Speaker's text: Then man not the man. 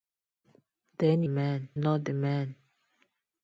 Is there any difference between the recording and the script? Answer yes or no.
no